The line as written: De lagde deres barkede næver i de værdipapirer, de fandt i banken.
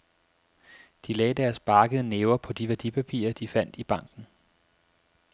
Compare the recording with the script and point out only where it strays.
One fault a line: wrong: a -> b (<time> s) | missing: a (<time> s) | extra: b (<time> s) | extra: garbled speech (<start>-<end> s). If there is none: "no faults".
wrong: i -> på (2.4 s)